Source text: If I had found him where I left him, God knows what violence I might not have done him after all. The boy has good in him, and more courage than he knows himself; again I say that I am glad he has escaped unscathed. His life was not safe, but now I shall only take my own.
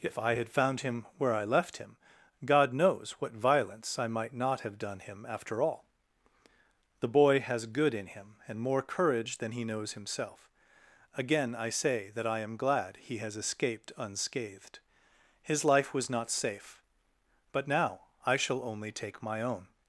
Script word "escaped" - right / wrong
right